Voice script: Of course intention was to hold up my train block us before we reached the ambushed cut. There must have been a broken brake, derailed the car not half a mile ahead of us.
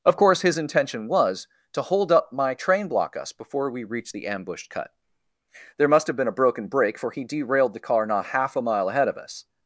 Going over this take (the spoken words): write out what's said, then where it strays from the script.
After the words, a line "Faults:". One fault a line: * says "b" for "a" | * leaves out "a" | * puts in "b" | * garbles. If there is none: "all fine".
Of course his intention was to hold up my train block us before we reached the ambushed cut. There must have been a broken brake, for he derailed the car not half a mile ahead of us.
Faults:
* puts in "his"
* puts in "for he"